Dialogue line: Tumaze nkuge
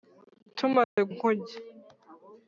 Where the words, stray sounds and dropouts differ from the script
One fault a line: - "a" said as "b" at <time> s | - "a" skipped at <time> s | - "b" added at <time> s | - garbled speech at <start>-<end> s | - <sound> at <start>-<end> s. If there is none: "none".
- dropout at 0.8-1.0 s